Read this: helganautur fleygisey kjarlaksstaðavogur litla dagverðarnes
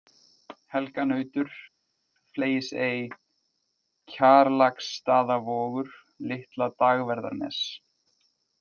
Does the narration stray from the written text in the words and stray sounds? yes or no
no